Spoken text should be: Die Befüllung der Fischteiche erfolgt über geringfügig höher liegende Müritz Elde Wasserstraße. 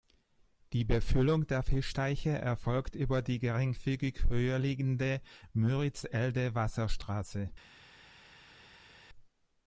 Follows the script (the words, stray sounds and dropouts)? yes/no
no